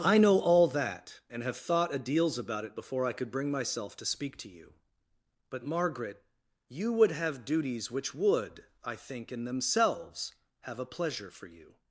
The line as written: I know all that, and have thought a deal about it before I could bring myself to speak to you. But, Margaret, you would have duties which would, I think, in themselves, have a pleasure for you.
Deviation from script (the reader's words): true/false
true